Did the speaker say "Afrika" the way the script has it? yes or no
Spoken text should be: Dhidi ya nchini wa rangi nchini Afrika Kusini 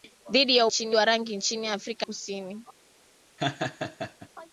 yes